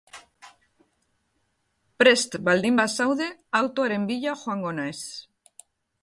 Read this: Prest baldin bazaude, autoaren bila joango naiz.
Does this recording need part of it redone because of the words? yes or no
no